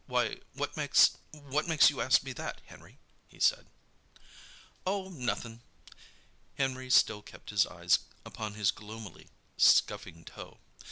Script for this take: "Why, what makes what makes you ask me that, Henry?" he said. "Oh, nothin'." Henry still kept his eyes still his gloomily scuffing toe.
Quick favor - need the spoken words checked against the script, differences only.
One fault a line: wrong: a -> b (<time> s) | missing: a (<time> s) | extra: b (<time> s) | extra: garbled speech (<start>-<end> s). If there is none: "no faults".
wrong: still -> upon (8.2 s)